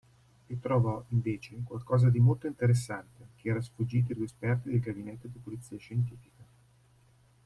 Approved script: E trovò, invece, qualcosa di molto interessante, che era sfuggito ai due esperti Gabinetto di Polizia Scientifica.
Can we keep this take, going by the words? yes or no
no